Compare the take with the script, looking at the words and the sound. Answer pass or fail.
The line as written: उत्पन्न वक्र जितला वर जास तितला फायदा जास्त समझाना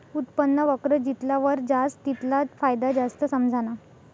pass